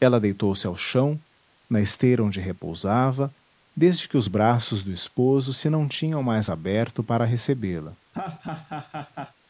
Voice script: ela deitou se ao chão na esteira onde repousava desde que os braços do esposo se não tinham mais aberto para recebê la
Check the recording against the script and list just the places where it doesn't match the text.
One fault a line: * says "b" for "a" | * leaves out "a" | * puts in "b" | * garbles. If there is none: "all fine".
all fine